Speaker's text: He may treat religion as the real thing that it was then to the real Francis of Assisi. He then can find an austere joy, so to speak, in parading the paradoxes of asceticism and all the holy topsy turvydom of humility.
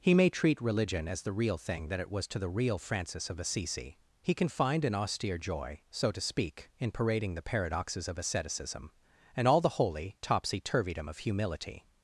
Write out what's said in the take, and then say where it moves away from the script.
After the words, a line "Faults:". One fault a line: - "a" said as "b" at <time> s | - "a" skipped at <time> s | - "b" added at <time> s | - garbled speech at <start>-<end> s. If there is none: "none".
He may treat religion as the real thing that it was to the real Francis of Assisi. He can find an austere joy, so to speak, in parading the paradoxes of asceticism and all the holy topsy turvydom of humility.
Faults:
- "then" skipped at 2.2 s
- "then" skipped at 4.3 s